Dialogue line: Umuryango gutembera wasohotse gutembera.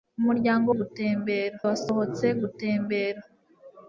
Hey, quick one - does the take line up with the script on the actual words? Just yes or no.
yes